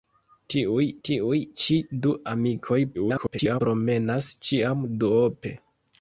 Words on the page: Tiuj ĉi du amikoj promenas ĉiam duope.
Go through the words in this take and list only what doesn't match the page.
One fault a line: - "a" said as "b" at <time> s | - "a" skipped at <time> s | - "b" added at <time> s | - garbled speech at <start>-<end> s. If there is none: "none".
- "tiuj" added at 1.1 s
- garbled speech at 2.9-3.6 s